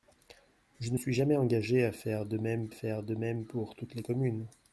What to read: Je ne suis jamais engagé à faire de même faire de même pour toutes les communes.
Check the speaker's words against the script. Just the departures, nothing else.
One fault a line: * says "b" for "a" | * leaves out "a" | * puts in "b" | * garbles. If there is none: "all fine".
all fine